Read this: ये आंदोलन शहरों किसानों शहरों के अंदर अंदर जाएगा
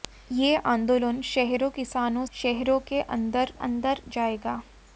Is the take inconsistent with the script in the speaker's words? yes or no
no